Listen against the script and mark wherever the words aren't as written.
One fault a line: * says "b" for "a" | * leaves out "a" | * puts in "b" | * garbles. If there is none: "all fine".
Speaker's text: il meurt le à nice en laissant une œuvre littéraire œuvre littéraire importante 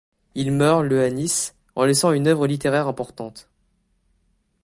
* leaves out "œuvre littéraire"